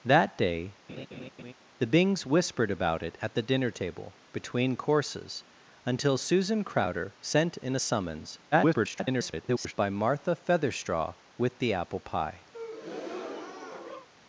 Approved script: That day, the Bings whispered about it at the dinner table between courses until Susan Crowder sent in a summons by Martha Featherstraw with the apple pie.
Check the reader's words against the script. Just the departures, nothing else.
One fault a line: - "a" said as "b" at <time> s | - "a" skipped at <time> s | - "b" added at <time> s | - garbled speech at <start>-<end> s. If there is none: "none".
- garbled speech at 8.5-9.7 s